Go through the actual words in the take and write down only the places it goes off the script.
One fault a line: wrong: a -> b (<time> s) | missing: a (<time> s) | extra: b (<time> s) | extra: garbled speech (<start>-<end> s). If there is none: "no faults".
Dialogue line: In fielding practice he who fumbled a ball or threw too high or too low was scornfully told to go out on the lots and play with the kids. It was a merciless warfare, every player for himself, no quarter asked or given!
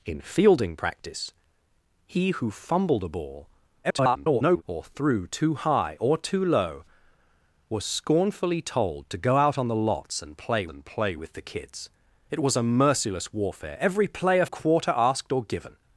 extra: garbled speech (3.8-4.6 s)
extra: and play (10.7 s)
missing: for himself no (14.5 s)